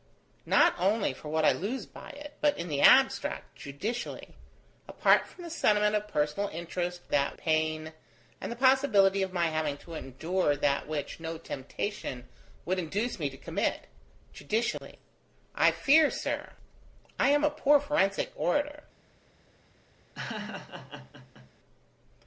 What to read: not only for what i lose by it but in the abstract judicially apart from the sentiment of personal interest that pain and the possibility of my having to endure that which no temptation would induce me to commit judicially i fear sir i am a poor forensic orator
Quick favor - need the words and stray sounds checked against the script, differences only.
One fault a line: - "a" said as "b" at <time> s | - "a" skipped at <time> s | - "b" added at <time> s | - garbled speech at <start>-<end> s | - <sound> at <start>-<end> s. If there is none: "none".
- dropout at 14.8-14.8 s
- laugh at 20.2-21.5 s